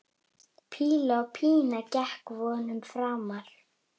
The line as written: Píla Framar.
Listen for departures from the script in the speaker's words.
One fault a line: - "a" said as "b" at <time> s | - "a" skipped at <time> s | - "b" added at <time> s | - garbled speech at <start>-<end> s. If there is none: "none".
- "Pína gekk vonum" added at 1.4 s